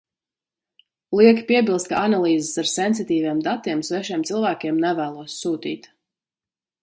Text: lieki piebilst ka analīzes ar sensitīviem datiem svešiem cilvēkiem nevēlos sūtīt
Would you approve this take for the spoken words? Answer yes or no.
yes